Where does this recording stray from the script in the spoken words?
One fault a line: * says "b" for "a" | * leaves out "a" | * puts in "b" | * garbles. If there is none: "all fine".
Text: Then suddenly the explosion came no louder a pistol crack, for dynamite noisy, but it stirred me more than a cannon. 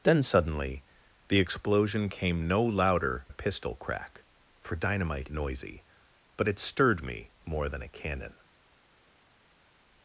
all fine